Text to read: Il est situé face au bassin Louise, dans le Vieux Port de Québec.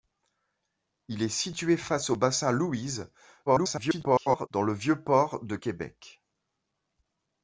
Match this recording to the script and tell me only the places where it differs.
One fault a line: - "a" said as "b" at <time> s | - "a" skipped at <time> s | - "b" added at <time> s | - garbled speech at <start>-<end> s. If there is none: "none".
- garbled speech at 3.5-4.5 s